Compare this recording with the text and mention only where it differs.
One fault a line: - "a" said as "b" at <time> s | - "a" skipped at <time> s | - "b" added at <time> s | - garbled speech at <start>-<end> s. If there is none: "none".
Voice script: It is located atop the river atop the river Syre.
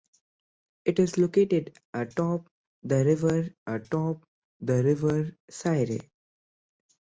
none